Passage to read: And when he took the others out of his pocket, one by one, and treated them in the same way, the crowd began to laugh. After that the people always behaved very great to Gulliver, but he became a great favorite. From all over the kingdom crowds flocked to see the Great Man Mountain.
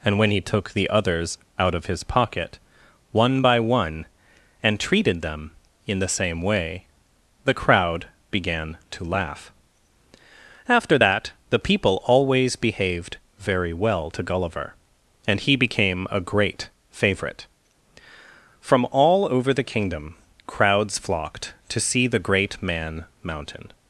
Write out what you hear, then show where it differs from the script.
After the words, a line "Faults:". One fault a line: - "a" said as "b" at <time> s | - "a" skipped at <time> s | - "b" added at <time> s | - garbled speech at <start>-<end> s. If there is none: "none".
And when he took the others out of his pocket, one by one, and treated them in the same way, the crowd began to laugh. After that the people always behaved very well to Gulliver, and he became a great favorite. From all over the kingdom crowds flocked to see the Great Man Mountain.
Faults:
- "great" said as "well" at 13.7 s
- "but" said as "and" at 15.3 s